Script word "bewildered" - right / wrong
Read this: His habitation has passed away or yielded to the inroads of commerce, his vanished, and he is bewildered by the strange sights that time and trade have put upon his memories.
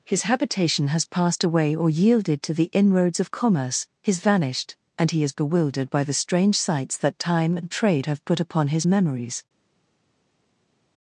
right